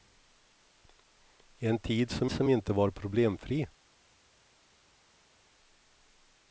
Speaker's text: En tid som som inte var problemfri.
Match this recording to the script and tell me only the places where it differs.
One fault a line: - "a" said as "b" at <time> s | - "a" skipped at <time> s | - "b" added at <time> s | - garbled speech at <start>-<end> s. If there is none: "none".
none